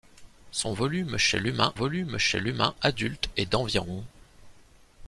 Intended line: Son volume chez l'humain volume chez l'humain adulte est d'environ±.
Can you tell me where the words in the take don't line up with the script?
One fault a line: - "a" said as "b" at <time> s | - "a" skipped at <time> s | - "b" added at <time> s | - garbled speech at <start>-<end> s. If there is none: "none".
none